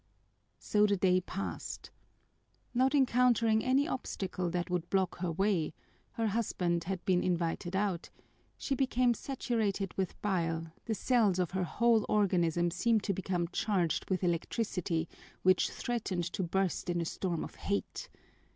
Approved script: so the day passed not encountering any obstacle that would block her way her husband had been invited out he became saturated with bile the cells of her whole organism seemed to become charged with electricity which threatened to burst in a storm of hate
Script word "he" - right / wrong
wrong